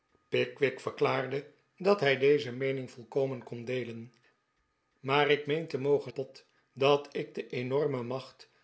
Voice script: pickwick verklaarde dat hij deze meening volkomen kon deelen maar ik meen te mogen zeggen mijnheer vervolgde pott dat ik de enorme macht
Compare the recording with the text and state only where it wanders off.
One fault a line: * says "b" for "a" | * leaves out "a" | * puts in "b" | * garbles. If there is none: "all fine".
* leaves out "zeggen mijnheer vervolgde"